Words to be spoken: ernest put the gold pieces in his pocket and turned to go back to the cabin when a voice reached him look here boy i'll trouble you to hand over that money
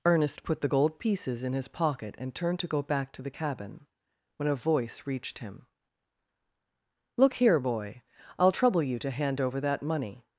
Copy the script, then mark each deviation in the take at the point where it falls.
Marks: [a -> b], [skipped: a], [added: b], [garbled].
ernest put the gold pieces in his pocket and turned to go back to the cabin when a voice reached him look here boy i'll trouble you to hand over that money